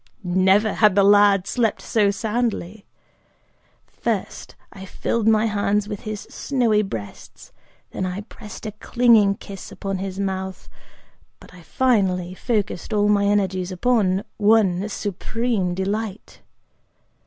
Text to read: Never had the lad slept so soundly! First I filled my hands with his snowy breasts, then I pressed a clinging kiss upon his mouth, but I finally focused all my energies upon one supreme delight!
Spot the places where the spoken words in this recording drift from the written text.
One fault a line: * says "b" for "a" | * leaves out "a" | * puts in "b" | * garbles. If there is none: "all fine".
all fine